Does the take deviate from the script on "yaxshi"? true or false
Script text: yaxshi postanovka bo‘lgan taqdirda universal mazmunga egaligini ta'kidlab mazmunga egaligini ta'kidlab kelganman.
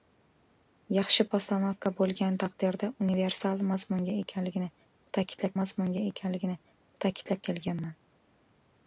false